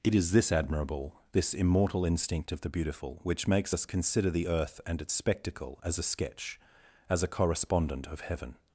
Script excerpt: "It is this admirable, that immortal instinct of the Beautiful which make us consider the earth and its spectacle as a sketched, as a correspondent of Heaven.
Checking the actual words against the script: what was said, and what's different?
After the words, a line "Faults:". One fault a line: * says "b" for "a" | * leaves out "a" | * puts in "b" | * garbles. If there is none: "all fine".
"It is this admirable, this immortal instinct of the Beautiful which makes us consider the earth and its spectacle as a sketch, as a correspondent of Heaven.
Faults:
* says "this" for "that"
* says "makes" for "make"
* says "sketch" for "sketched"